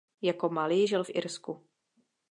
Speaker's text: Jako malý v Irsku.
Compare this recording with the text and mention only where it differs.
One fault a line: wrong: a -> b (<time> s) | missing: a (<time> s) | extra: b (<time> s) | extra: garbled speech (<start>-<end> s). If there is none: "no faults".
extra: žil (0.8 s)